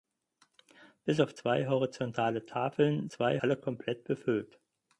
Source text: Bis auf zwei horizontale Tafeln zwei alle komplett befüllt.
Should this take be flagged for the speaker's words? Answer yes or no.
no